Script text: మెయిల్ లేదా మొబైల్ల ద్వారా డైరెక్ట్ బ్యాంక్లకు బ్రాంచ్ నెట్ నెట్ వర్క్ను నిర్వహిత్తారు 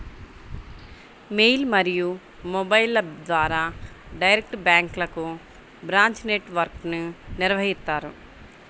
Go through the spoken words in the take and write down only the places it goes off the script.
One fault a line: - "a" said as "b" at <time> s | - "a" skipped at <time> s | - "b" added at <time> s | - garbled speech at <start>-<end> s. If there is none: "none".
- "లేదా" said as "మరియు" at 1.7 s
- "నెట్" skipped at 6.5 s